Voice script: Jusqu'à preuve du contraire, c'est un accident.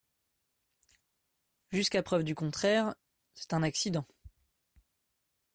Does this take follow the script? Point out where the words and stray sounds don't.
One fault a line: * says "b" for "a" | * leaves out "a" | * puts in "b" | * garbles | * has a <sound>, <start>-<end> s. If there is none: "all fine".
all fine